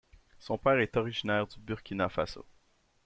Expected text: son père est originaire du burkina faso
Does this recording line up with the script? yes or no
yes